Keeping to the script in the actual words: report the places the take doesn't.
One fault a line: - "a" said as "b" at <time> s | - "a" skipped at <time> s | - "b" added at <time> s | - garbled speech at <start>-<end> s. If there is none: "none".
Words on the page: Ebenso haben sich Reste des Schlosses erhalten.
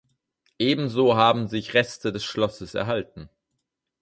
none